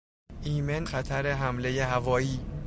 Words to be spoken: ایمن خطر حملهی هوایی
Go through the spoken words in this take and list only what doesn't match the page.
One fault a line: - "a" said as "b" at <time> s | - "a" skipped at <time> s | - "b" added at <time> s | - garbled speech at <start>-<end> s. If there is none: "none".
none